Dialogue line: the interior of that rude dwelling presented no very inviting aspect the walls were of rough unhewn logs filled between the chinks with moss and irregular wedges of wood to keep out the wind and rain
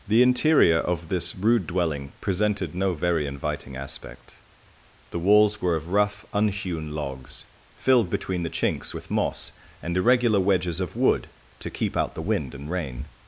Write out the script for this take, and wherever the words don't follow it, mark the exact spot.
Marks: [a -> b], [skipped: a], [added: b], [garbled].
the interior of [that -> this] rude dwelling presented no very inviting aspect the walls were of rough unhewn logs filled between the chinks with moss and irregular wedges of wood to keep out the wind and rain